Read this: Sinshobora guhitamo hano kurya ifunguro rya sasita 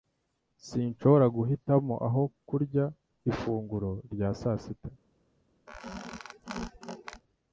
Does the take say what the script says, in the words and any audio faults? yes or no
no